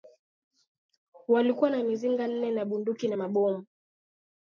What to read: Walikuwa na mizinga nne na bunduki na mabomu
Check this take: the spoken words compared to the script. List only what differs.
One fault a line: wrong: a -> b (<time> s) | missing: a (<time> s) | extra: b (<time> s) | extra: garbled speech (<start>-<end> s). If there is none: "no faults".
no faults